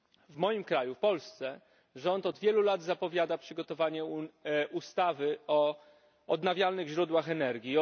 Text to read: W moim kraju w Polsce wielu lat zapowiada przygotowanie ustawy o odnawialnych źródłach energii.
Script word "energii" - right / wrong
right